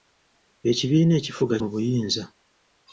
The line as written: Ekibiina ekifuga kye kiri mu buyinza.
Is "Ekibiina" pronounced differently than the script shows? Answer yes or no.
no